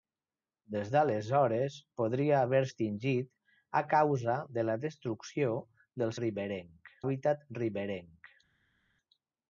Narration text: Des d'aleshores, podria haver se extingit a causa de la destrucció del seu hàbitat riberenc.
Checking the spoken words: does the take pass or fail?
fail